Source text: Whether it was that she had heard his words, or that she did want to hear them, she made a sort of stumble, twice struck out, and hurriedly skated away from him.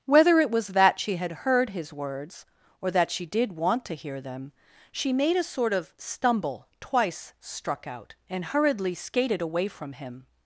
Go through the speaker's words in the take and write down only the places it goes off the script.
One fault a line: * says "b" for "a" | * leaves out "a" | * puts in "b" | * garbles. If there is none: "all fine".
all fine